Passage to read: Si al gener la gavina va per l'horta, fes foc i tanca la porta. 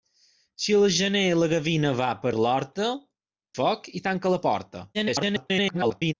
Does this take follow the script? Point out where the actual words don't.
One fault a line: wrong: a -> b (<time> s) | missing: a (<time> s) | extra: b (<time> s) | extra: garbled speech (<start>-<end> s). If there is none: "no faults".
missing: fes (2.9 s)
extra: garbled speech (4.9-6.1 s)